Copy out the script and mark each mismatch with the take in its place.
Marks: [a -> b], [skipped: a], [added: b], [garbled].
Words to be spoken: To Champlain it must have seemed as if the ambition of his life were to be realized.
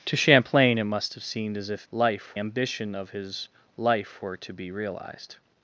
To Champlain it must have seemed as if [the -> life] ambition of his life were to be realized.